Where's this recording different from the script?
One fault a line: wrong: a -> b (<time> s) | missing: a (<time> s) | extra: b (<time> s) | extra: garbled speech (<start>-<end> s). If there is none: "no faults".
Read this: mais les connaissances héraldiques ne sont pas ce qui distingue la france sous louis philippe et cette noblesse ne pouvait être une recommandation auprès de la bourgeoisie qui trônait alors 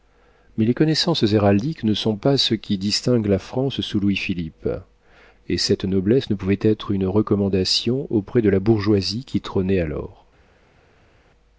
no faults